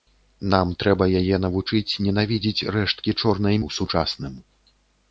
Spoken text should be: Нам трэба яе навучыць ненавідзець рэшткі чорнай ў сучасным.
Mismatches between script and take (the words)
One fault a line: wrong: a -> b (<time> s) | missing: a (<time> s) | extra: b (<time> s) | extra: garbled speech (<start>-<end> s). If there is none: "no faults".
no faults